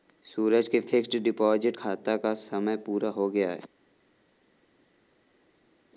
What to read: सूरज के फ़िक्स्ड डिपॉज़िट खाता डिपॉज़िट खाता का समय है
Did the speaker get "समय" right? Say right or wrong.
wrong